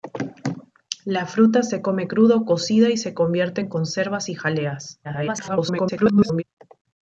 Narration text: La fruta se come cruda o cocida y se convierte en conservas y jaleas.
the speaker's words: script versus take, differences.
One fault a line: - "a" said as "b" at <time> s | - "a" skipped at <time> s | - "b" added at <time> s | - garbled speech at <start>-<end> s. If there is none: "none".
- garbled speech at 5.0-6.4 s